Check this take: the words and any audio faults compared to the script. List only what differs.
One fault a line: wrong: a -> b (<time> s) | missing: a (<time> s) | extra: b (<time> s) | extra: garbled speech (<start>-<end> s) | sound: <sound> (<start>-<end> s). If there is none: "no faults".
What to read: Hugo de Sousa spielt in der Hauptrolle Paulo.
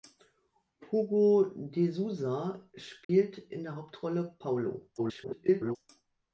sound: dropout (3.0-3.1 s)
extra: garbled speech (5.0-5.8 s)